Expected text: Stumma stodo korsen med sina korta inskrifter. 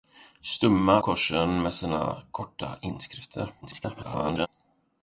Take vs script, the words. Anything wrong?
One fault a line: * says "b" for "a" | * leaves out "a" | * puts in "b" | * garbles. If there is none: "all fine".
* leaves out "stodo"
* garbles